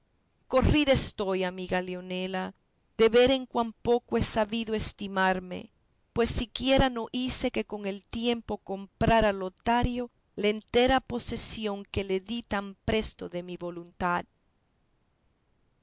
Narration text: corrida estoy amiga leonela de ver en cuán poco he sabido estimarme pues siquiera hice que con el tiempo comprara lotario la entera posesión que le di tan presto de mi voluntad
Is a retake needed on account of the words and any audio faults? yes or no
yes